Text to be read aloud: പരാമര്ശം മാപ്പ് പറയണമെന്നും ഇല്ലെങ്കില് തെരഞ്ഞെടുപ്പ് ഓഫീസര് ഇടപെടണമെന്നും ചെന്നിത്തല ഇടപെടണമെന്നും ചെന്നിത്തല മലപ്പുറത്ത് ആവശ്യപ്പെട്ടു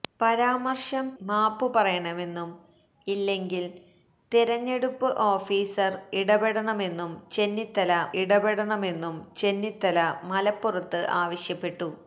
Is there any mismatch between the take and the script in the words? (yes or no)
no